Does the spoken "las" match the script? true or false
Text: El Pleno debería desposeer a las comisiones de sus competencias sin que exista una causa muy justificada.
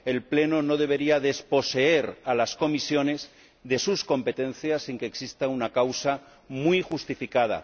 true